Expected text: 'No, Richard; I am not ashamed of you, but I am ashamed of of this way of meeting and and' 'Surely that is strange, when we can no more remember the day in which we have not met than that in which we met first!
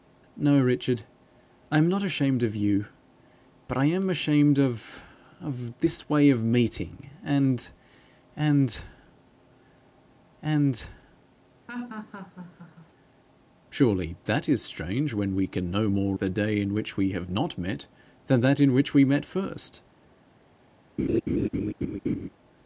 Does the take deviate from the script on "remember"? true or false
true